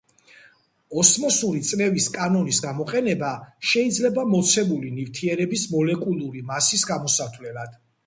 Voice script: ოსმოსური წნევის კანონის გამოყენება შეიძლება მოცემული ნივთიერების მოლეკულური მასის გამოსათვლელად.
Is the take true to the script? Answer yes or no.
yes